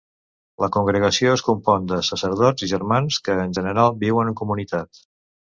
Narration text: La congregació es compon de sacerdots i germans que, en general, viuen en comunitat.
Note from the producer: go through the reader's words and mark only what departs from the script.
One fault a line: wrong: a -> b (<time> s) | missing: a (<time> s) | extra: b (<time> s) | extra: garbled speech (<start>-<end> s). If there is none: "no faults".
no faults